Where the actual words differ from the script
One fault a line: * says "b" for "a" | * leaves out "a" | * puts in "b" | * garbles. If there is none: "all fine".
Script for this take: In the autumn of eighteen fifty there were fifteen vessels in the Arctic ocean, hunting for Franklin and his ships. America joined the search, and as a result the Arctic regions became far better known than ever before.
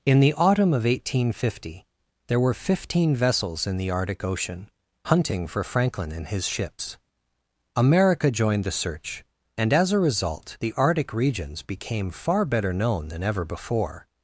all fine